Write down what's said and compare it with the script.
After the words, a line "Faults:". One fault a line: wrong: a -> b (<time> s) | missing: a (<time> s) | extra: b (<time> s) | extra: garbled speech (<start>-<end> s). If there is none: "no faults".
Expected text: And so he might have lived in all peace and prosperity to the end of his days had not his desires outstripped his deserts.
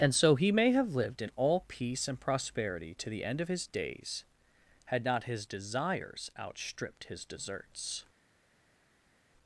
And so he may have lived in all peace and prosperity to the end of his days had not his desires outstripped his deserts.
Faults:
wrong: might -> may (0.5 s)